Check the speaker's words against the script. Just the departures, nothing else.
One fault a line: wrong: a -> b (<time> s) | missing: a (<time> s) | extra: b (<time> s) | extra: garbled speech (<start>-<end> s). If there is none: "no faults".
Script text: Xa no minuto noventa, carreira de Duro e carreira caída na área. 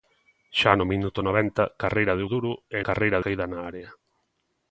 no faults